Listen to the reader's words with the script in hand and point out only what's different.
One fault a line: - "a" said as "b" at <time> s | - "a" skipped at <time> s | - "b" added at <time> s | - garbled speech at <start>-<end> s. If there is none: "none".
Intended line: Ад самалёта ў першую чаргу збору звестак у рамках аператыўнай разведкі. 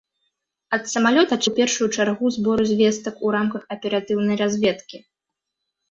none